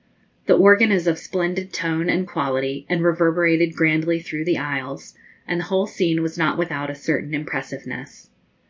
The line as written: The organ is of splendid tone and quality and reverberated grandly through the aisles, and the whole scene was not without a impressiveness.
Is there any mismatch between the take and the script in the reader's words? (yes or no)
yes